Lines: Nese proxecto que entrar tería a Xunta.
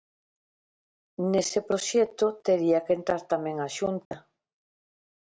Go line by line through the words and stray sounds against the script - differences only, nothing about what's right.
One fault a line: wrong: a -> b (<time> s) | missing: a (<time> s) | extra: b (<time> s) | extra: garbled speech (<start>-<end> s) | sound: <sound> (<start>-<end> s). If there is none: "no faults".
extra: tería (2.5 s)
wrong: tería -> tamén (3.3 s)
sound: dropout (4.1-4.1 s)